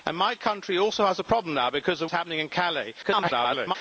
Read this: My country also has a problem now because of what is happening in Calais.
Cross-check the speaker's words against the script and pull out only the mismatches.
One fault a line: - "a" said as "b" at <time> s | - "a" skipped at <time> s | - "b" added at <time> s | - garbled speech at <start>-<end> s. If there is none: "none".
- "what" skipped at 2.1 s
- garbled speech at 3.0-3.8 s